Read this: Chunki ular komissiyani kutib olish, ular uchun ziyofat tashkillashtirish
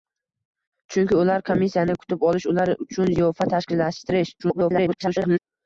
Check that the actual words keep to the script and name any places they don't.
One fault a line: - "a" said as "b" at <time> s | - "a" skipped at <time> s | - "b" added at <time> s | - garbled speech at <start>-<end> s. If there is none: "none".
- garbled speech at 4.4-5.4 s